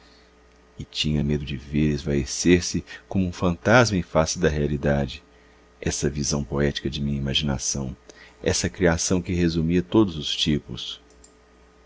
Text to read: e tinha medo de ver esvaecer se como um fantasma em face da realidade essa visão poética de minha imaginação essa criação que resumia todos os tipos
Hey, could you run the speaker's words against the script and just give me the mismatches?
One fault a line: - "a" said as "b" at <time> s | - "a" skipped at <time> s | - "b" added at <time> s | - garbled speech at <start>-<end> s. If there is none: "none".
none